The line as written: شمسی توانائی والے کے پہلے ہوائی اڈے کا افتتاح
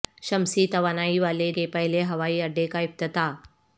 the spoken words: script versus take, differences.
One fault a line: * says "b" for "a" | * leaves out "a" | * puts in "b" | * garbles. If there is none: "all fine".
all fine